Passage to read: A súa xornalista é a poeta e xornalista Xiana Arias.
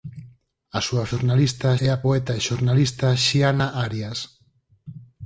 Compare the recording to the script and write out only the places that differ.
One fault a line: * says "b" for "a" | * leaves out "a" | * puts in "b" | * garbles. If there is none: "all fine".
all fine